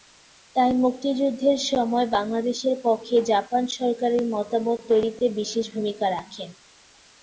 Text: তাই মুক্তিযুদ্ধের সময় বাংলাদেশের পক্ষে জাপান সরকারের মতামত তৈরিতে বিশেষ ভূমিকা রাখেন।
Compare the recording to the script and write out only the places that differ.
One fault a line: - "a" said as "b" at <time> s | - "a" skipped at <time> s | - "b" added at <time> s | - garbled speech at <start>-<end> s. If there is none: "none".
none